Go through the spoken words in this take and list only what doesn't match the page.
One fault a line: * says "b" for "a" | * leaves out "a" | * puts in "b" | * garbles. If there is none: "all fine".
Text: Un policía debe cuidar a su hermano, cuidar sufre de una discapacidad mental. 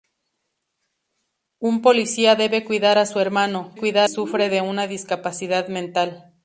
all fine